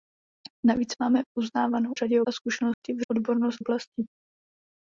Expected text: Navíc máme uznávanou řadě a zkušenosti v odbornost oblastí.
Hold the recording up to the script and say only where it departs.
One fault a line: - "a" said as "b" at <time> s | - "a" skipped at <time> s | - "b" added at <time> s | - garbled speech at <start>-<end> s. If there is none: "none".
none